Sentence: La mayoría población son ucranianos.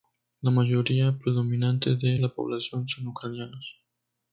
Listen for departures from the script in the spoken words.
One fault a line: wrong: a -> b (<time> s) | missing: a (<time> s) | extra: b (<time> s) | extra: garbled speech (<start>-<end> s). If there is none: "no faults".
extra: predominante de la (1.2 s)